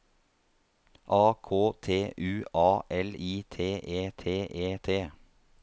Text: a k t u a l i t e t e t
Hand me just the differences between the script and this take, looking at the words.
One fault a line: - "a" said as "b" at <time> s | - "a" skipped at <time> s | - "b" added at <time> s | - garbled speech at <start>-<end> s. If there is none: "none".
none